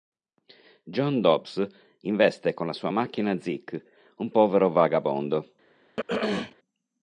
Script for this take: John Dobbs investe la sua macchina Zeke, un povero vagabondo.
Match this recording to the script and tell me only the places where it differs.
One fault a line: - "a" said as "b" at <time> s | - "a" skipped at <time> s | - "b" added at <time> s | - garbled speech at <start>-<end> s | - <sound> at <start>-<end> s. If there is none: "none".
- "con" added at 2.5 s
- throat clearing at 6.0-6.6 s